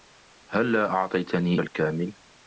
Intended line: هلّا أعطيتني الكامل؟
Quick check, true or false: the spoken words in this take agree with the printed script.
true